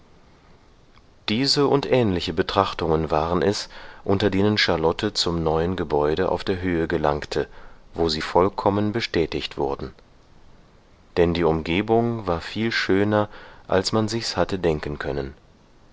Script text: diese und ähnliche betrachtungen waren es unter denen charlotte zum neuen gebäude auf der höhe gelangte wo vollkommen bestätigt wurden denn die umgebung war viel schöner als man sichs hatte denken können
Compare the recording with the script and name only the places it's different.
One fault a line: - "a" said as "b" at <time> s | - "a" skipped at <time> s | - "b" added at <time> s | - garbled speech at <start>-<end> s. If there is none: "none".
- "sie" added at 8.1 s